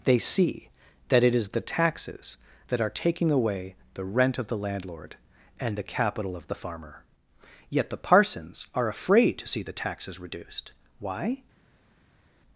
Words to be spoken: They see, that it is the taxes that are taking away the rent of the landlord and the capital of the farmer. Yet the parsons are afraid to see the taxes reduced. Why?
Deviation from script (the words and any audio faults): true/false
false